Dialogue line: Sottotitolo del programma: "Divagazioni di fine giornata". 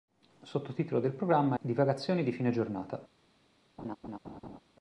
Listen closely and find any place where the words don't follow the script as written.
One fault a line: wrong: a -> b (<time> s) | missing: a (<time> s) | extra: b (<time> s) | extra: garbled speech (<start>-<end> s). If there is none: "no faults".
no faults